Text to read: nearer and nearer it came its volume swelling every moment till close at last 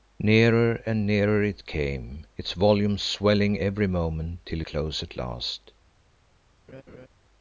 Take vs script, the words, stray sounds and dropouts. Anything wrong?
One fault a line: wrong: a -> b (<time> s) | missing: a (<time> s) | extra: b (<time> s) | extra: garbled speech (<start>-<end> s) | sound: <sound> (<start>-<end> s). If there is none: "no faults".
sound: laugh (6.7-7.1 s)